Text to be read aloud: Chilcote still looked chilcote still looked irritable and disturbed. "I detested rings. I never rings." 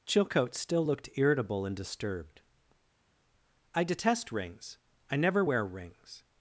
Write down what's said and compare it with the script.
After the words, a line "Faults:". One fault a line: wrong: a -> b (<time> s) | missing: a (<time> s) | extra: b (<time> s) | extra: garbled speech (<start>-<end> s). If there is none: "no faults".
Chilcote still looked irritable and disturbed. "I detest rings. I never wear rings."
Faults:
missing: chilcote still looked (1.1 s)
wrong: detested -> detest (3.8 s)
extra: wear (5.4 s)